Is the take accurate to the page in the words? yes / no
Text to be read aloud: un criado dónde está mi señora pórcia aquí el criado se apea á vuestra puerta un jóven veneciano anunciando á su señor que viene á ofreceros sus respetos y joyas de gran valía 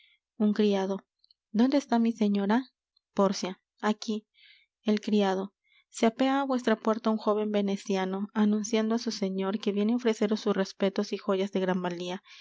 yes